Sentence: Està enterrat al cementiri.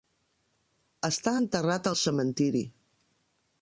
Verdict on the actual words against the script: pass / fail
pass